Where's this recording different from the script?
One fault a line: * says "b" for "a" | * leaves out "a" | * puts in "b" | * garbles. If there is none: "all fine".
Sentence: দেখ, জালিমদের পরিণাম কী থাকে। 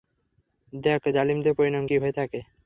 * puts in "হয়ে"